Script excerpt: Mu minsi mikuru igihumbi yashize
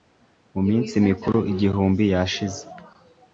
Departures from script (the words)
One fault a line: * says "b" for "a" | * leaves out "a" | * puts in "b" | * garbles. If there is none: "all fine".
all fine